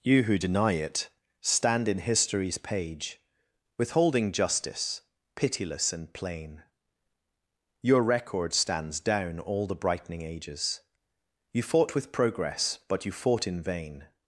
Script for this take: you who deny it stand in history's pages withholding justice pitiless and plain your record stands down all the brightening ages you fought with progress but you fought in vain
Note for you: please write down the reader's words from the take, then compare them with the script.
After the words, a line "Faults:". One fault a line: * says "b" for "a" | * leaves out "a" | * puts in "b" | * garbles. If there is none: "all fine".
you who deny it stand in history's page withholding justice pitiless and plain your record stands down all the brightening ages you fought with progress but you fought in vain
Faults:
* says "page" for "pages"